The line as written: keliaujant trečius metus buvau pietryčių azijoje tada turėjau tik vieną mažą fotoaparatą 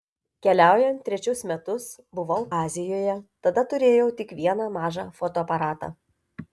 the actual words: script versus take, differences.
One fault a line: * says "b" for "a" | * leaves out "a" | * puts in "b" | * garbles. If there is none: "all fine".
* leaves out "pietryčių"